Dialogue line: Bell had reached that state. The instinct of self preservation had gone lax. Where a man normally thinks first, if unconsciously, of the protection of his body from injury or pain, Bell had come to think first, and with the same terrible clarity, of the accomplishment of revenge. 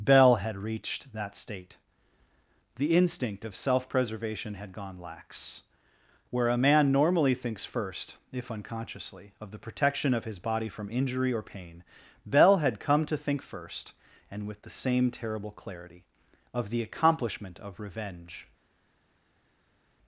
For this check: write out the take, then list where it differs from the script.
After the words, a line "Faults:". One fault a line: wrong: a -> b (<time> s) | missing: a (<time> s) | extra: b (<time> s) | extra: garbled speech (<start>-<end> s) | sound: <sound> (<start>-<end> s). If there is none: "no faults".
Bell had reached that state. The instinct of self preservation had gone lax. Where a man normally thinks first, if unconsciously, of the protection of his body from injury or pain, Bell had come to think first, and with the same terrible clarity, of the accomplishment of revenge.
Faults:
no faults